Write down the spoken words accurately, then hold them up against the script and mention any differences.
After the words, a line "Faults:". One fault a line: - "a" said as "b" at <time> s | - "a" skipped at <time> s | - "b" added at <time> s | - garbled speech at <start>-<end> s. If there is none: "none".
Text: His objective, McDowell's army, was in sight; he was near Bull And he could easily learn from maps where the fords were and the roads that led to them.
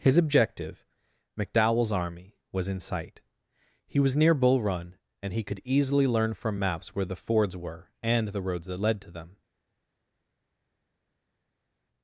His objective, McDowell's army, was in sight; he was near Bull Run, and he could easily learn from maps where the fords were and the roads that led to them.
Faults:
- "Run" added at 4.6 s